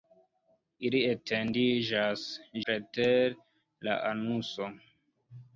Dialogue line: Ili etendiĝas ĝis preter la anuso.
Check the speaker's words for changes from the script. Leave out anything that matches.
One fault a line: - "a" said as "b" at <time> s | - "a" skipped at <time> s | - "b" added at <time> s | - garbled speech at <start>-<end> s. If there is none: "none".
- "ĝis" skipped at 2.2 s